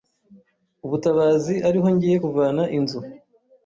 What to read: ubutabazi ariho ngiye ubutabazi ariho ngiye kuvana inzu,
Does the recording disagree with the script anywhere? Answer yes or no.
yes